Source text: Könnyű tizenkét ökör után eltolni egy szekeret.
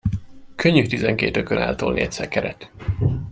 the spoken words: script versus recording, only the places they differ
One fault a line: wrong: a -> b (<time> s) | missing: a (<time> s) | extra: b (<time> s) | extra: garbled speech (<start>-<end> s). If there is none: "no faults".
missing: után (1.6 s)